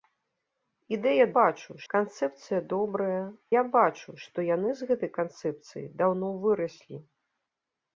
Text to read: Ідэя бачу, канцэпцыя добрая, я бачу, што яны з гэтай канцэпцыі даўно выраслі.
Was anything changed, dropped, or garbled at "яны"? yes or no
no